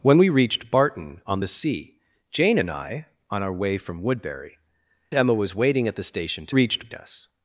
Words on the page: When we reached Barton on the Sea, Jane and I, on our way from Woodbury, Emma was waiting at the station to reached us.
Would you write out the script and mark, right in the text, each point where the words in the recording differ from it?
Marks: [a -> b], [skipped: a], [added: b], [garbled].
When we reached Barton on the Sea, Jane and I, on our way from Woodbury, Emma was waiting at the station to reached us.